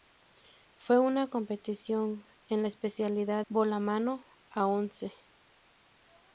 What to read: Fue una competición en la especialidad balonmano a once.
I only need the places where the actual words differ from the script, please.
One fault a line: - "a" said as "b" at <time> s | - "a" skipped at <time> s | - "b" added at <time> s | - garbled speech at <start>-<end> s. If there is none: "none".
none